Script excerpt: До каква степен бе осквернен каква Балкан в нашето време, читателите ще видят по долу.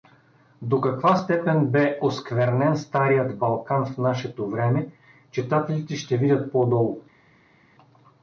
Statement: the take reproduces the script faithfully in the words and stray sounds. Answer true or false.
false